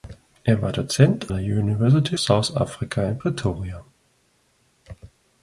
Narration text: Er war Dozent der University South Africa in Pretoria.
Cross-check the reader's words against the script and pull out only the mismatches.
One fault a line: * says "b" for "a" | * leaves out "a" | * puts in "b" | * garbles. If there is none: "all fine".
all fine